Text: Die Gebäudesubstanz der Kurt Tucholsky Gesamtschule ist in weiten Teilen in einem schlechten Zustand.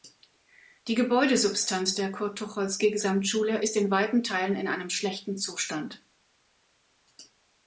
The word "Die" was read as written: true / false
true